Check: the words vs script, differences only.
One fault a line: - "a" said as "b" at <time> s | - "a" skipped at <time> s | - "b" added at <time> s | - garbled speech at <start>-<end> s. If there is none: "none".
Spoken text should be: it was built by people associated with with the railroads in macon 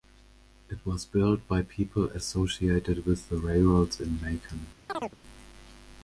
- "with" skipped at 3.3 s